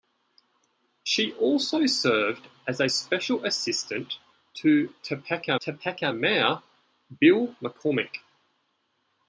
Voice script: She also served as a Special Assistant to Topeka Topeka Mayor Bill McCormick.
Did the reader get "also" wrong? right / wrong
right